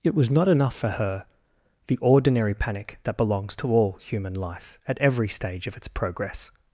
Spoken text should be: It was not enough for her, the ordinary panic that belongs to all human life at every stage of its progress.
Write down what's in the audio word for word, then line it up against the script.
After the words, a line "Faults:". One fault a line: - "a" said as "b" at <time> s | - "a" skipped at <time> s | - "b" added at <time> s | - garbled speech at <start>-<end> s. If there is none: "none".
It was not enough for her, the ordinary panic that belongs to all human life at every stage of its progress.
Faults:
none